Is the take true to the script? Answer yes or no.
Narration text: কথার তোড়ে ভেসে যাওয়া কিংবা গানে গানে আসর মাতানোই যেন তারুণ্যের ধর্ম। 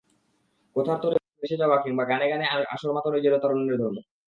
yes